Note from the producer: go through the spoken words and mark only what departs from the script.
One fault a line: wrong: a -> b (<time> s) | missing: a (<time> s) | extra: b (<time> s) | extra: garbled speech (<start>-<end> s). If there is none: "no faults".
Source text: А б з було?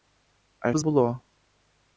no faults